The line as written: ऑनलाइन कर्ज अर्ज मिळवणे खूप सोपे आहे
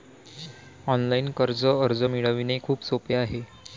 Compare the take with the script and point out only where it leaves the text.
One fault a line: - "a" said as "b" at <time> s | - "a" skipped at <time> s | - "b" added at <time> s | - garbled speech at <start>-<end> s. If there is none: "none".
none